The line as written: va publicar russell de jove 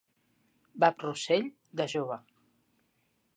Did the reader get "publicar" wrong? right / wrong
wrong